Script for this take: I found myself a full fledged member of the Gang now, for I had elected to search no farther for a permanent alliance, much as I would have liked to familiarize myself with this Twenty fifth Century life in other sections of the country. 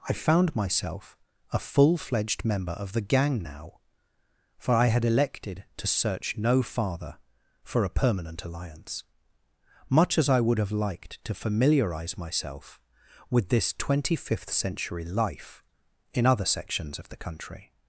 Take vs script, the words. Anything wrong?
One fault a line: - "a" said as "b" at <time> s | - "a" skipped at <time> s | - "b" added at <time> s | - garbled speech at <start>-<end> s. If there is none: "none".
none